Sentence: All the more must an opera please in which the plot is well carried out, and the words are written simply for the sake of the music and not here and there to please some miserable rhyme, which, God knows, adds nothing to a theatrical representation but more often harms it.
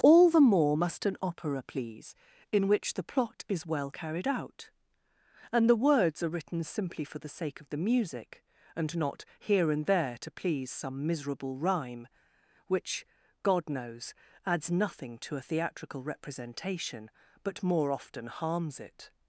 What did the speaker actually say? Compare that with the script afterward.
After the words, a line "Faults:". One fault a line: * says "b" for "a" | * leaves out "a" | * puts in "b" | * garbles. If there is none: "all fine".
All the more must an opera please in which the plot is well carried out, and the words are written simply for the sake of the music and not here and there to please some miserable rhyme, which, God knows, adds nothing to a theatrical representation but more often harms it.
Faults:
all fine